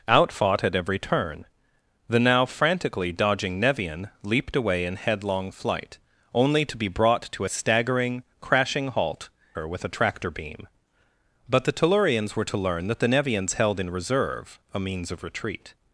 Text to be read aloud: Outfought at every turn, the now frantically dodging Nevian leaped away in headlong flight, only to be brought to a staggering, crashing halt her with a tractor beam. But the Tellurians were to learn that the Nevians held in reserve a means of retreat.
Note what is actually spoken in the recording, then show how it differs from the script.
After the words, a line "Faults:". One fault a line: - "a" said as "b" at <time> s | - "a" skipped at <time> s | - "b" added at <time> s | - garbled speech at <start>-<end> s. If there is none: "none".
Outfought at every turn, the now frantically dodging Nevian leaped away in headlong flight, only to be brought to a staggering, crashing halt her with a tractor beam. But the Tellurians were to learn that the Nevians held in reserve a means of retreat.
Faults:
none